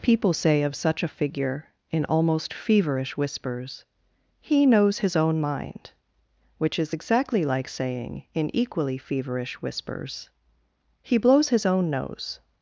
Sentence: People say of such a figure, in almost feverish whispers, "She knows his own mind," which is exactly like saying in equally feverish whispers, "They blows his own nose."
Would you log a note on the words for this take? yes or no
yes